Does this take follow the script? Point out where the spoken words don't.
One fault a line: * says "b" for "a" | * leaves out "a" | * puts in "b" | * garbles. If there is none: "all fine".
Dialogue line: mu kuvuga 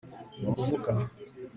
all fine